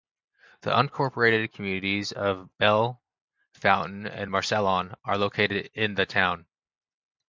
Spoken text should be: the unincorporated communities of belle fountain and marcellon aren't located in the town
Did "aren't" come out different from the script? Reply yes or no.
yes